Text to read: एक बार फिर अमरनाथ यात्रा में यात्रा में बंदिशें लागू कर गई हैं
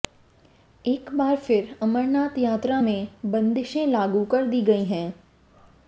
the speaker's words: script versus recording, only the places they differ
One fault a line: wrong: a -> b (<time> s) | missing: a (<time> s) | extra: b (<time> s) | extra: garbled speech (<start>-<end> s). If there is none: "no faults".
missing: यात्रा में (3.1 s)
extra: दी (4.5 s)